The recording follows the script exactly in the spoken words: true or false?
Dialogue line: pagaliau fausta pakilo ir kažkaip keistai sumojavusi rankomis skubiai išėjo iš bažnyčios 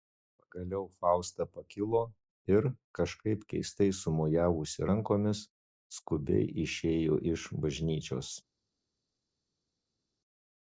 true